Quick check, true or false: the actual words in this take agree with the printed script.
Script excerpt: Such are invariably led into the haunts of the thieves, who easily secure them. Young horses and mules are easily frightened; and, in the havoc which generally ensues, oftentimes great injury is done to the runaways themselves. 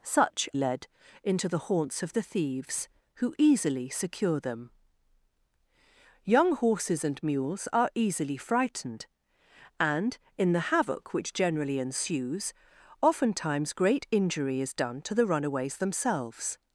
false